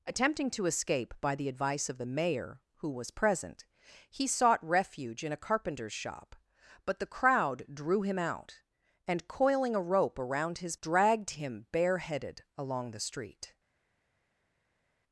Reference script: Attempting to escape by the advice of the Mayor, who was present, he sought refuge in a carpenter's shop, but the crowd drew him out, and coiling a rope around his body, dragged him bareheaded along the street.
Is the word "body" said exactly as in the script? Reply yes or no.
no